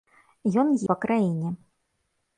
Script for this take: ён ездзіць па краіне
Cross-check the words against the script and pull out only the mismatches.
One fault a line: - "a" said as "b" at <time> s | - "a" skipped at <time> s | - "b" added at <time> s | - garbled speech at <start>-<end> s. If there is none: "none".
- "ездзіць" skipped at 0.7 s